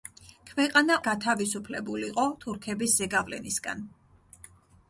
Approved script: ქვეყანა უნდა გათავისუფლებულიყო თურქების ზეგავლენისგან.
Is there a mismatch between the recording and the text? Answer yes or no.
yes